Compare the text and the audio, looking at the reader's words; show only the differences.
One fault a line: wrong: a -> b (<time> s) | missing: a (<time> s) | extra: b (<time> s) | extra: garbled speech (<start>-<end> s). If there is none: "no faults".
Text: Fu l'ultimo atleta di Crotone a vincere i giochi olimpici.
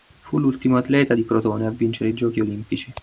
no faults